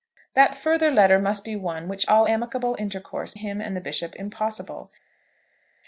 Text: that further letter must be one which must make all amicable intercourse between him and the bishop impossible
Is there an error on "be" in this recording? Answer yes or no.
no